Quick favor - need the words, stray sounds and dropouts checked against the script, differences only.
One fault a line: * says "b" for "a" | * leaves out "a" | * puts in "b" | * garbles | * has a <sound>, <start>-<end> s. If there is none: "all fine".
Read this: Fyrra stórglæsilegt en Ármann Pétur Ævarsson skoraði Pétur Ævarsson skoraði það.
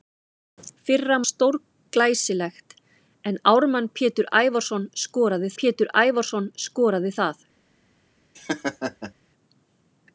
* has a laugh, 8.3-9.1 s